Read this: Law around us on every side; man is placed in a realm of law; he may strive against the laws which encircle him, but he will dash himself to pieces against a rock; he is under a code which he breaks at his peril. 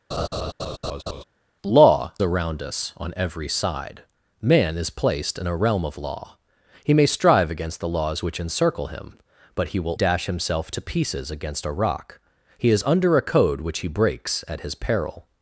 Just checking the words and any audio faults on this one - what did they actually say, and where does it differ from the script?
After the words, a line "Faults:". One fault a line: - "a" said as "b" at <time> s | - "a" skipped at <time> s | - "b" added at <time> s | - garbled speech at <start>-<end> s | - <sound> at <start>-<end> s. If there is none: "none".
Law around us on every side; man is placed in a realm of law; he may strive against the laws which encircle him, but he will dash himself to pieces against a rock; he is under a code which he breaks at his peril.
Faults:
- laugh at 0.1-1.2 s